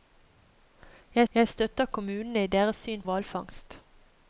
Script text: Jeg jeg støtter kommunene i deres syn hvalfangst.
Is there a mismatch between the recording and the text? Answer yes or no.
no